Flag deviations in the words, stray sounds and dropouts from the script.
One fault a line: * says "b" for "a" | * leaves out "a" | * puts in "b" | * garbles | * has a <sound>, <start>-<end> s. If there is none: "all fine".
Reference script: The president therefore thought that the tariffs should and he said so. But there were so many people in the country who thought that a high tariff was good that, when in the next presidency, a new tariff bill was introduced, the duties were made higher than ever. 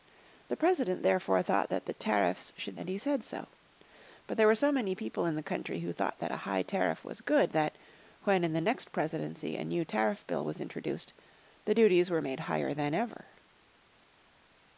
all fine